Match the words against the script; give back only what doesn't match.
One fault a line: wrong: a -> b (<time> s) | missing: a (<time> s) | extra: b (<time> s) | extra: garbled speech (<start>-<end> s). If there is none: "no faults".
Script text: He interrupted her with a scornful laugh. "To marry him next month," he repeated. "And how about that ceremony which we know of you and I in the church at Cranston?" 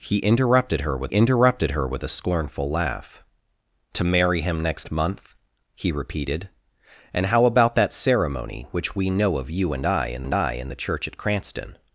extra: interrupted her with (1.1 s)
extra: and I in (10.2 s)